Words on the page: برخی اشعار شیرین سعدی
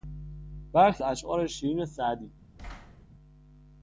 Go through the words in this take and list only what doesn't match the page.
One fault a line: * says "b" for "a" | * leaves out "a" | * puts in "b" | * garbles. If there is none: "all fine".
all fine